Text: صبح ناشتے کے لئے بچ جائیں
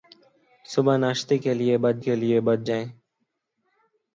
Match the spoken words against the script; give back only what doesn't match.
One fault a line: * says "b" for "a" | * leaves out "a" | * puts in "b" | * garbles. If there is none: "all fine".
* puts in "کے لئے بچ"